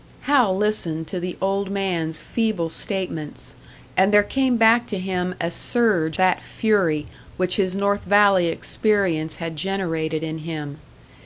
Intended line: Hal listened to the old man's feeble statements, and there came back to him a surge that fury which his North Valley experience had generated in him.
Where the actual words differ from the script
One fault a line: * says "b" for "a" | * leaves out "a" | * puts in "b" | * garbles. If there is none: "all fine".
all fine